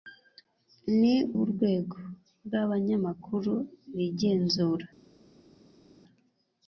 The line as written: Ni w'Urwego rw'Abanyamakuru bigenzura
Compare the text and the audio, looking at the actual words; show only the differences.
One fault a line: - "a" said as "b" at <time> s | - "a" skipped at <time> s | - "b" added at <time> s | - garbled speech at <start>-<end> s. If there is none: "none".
none